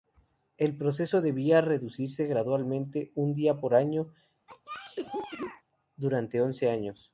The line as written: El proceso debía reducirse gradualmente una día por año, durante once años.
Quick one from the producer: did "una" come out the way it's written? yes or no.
no